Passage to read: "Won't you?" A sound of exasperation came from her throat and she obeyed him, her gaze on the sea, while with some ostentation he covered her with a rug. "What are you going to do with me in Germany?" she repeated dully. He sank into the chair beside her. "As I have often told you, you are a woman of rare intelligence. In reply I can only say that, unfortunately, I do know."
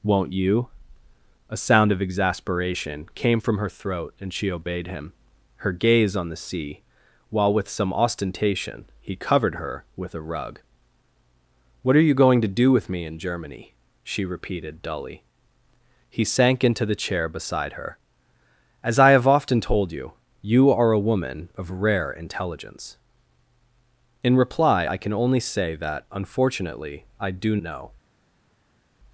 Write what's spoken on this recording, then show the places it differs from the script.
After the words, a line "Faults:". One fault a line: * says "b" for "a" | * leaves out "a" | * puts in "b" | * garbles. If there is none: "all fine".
"Won't you?" A sound of exasperation came from her throat and she obeyed him, her gaze on the sea, while with some ostentation he covered her with a rug. "What are you going to do with me in Germany?" she repeated dully. He sank into the chair beside her. "As I have often told you, you are a woman of rare intelligence. In reply I can only say that, unfortunately, I do know."
Faults:
all fine